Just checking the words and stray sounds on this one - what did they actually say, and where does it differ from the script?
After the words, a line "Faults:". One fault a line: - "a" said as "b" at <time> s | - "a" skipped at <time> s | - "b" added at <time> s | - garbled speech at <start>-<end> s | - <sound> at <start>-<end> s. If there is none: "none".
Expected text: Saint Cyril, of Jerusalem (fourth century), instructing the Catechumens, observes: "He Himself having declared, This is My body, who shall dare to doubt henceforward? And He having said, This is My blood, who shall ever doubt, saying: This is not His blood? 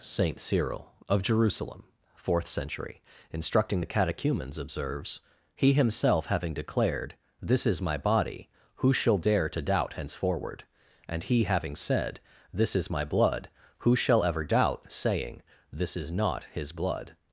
Saint Cyril, of Jerusalem (fourth century), instructing the Catechumens, observes: "He Himself having declared, This is My body, who shall dare to doubt henceforward? And He having said, This is My blood, who shall ever doubt, saying: This is not His blood?
Faults:
none